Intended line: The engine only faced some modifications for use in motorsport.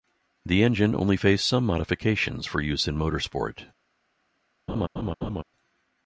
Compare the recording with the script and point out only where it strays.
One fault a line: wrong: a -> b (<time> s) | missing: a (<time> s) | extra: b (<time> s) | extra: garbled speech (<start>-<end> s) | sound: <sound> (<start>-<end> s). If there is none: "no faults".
sound: laugh (4.7-5.4 s)